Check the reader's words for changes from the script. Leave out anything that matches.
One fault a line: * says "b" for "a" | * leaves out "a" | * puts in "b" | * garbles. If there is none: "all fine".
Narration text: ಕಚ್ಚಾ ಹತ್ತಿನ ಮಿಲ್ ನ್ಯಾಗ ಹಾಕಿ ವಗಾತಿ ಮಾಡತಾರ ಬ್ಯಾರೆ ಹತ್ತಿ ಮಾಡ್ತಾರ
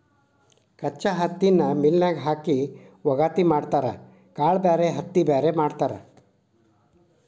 * puts in "ಕಾಳ"
* puts in "ಬ್ಯಾರೆ"